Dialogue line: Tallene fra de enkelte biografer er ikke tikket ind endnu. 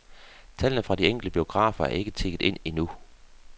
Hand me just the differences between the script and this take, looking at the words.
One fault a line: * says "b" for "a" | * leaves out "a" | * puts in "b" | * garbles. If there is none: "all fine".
all fine